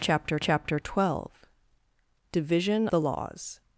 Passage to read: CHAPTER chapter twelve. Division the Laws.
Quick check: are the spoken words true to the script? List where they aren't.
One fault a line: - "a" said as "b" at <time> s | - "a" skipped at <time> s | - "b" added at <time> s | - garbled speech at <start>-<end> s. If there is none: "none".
none